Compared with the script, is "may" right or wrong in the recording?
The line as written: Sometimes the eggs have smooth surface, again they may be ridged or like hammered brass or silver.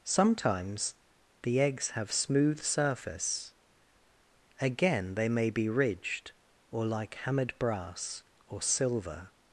right